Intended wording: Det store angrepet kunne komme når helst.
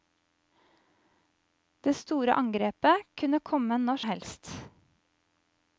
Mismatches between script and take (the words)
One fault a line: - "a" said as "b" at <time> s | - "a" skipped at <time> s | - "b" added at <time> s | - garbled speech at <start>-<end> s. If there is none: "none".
none